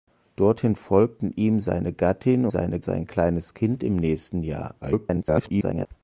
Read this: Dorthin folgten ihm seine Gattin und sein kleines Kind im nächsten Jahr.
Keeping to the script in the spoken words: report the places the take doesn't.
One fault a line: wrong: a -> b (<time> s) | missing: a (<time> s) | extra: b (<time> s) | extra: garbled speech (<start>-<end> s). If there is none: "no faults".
wrong: und -> seine (2.5 s)
extra: garbled speech (4.8-5.9 s)